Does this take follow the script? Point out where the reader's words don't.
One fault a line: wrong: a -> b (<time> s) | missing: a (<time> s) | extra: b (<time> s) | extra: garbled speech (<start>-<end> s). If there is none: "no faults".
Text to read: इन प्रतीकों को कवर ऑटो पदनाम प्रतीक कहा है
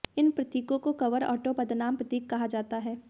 extra: जाता (2.5 s)